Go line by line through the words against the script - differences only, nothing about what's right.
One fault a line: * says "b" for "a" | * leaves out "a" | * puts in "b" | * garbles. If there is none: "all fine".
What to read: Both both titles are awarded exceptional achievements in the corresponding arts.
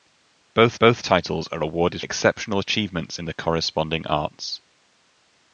all fine